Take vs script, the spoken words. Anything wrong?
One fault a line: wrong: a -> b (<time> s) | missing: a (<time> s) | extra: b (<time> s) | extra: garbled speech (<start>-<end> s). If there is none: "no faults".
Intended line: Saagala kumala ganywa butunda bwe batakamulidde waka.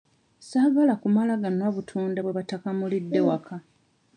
no faults